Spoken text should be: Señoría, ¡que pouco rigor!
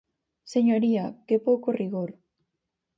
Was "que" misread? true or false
false